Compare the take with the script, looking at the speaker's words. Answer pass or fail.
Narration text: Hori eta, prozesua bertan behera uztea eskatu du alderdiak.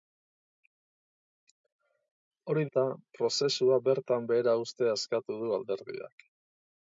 pass